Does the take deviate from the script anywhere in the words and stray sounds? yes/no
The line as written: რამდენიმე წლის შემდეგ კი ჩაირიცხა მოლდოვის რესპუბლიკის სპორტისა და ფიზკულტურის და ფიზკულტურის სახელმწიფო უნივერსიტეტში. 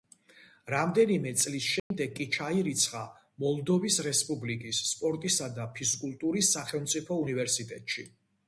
yes